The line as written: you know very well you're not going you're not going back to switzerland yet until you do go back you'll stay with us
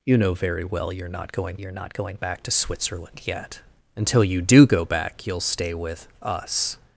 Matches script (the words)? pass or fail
pass